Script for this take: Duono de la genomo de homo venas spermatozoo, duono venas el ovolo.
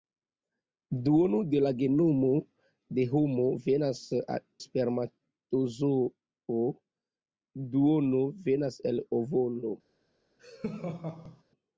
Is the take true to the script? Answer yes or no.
yes